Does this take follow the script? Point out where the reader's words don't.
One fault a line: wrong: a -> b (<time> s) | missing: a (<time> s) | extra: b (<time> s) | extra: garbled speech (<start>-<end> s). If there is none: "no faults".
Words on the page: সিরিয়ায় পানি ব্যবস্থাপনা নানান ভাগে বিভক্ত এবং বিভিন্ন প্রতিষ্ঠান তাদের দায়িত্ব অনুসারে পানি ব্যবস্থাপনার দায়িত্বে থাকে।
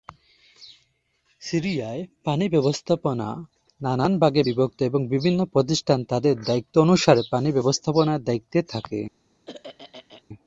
no faults